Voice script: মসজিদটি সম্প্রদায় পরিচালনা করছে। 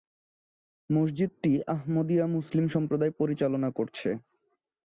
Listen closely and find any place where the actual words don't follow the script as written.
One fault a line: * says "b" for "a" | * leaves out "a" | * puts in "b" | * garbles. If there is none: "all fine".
* puts in "আহমদিয়া মুসলিম"